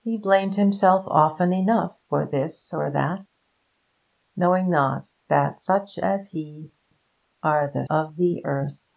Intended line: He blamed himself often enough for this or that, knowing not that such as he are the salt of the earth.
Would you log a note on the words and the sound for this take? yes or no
yes